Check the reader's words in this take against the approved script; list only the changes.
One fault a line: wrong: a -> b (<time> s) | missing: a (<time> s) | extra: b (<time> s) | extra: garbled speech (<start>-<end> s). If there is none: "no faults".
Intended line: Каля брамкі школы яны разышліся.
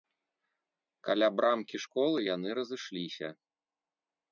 no faults